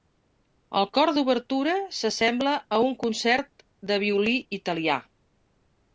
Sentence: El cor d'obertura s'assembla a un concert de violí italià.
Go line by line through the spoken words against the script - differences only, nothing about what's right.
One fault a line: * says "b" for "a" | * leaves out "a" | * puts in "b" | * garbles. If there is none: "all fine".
all fine